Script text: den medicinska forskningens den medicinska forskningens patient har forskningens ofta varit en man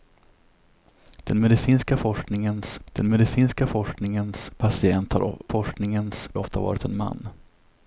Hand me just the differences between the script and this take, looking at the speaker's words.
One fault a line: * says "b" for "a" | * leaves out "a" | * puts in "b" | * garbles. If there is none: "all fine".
all fine